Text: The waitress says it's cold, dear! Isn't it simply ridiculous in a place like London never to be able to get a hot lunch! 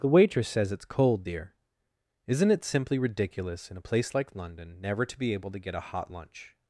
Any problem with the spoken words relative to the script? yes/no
no